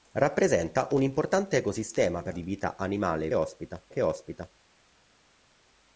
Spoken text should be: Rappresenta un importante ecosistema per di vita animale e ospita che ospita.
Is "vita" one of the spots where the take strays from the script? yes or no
no